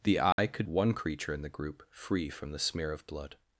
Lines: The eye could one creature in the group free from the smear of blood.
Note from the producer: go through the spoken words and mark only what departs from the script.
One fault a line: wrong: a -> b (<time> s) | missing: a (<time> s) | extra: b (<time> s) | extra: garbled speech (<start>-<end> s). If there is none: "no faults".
no faults